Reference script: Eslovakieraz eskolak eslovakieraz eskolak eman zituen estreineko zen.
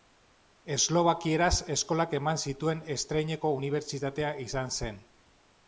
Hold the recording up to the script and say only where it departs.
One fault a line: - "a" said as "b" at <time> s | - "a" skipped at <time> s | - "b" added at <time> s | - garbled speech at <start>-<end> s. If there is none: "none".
- "eslovakieraz eskolak" skipped at 2.1 s
- "unibertsitatea izan" added at 3.6 s